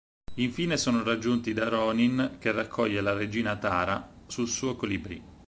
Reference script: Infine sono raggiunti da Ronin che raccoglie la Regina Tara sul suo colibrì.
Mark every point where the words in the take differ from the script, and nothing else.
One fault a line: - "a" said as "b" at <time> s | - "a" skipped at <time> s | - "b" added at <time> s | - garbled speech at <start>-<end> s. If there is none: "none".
none